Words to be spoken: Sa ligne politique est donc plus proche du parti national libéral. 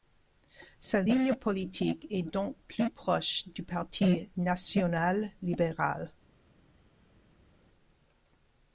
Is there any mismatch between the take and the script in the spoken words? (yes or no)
no